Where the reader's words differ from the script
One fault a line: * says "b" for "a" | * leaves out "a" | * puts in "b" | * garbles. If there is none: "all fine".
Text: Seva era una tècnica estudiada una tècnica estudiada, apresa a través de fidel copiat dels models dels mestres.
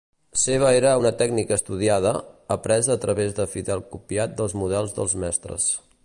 * leaves out "una tècnica estudiada"